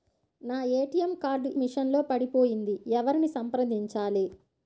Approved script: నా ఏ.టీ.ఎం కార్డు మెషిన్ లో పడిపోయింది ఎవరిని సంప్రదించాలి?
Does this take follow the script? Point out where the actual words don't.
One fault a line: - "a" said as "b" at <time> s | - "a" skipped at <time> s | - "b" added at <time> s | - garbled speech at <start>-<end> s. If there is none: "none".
none